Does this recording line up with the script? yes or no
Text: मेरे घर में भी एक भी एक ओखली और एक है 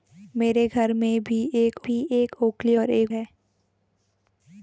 yes